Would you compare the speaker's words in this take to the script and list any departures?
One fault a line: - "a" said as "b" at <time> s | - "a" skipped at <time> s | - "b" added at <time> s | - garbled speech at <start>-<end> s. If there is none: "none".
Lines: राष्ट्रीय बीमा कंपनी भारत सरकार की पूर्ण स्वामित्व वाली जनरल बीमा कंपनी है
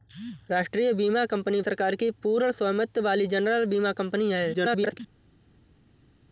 - "भारत" skipped at 1.6 s
- garbled speech at 4.5-5.0 s